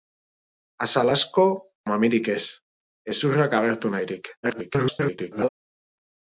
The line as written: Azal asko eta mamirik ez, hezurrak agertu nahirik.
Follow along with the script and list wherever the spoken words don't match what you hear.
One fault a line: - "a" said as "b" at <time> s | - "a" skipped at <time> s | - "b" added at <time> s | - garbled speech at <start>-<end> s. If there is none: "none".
- "eta" skipped at 1.4 s
- garbled speech at 4.4-5.5 s